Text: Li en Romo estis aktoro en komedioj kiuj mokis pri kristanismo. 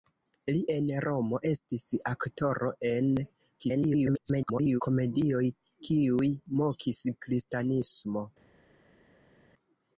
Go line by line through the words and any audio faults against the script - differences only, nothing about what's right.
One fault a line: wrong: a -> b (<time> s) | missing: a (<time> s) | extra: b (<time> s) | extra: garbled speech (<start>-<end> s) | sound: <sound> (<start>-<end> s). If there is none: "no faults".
extra: garbled speech (3.6-4.8 s)
missing: pri (7.1 s)